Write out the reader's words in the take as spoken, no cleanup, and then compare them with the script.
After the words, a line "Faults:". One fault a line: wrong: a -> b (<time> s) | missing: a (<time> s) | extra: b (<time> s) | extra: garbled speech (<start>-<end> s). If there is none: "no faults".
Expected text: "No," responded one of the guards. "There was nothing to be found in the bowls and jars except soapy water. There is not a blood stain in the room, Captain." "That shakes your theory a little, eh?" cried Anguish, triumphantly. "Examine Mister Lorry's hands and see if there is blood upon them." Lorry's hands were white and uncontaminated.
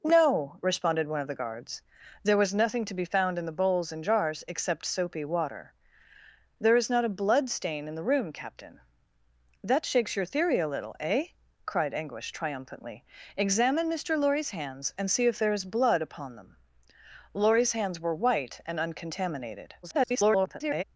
"No," responded one of the guards. "There was nothing to be found in the bowls and jars except soapy water. There is not a blood stain in the room, Captain." "That shakes your theory a little, eh?" cried Anguish, triumphantly. "Examine Mister Lorry's hands and see if there is blood upon them." Lorry's hands were white and uncontaminated. [garbled]
Faults:
extra: garbled speech (19.8-20.8 s)